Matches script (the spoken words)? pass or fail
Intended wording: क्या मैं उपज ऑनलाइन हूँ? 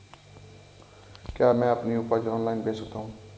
fail